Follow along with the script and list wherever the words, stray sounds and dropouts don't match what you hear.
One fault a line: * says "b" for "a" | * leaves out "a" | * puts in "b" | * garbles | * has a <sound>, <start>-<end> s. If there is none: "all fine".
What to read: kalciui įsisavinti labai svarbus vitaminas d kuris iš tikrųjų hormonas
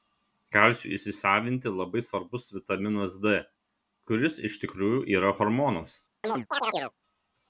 * puts in "yra"
* has a chirp, 6.2-6.9 s